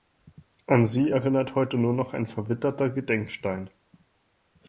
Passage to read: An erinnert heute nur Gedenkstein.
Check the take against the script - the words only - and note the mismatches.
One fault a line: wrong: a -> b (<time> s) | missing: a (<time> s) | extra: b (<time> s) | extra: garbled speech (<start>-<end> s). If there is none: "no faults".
extra: sie (0.8 s)
extra: noch ein verwitterter (1.9 s)